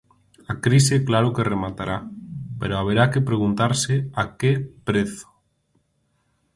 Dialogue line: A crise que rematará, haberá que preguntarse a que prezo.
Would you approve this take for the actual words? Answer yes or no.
no